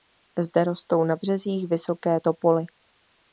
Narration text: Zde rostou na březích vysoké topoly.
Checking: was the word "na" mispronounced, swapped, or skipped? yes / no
no